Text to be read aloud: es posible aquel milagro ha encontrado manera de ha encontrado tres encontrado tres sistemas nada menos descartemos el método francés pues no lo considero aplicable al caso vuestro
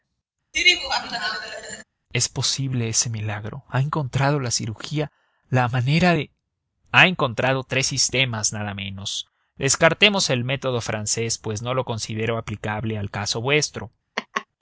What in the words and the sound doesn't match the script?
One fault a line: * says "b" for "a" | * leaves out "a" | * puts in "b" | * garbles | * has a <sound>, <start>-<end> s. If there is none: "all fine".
* has a laugh, 0.5-1.8 s
* says "ese" for "aquel"
* puts in "la cirugía la"
* leaves out "encontrado tres"
* has a laugh, 14.2-14.5 s